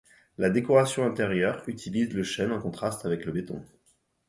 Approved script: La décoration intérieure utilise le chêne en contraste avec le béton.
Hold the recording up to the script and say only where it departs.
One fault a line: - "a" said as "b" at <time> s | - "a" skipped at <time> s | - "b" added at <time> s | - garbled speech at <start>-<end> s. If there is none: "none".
none